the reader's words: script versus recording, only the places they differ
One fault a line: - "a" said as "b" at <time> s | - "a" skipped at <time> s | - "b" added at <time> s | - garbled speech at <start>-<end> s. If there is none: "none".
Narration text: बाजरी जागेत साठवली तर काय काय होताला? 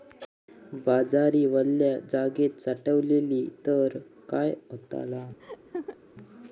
- "वल्या" added at 1.4 s
- "काय" skipped at 4.5 s